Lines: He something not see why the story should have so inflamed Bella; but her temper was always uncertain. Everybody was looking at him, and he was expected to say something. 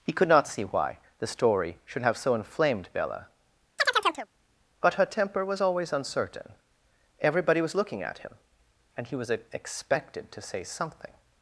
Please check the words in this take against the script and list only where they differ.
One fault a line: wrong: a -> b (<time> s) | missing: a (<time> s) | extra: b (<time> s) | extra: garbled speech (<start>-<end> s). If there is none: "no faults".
wrong: something -> could (0.1 s)